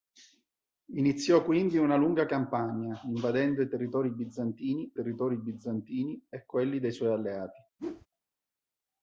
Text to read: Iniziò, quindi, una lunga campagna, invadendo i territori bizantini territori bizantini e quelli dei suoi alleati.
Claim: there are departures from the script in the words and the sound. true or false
true